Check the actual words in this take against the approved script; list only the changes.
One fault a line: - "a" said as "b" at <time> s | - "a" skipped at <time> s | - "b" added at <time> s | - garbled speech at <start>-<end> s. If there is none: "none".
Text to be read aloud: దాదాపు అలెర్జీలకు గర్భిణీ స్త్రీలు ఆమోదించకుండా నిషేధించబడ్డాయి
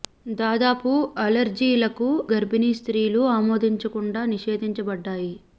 none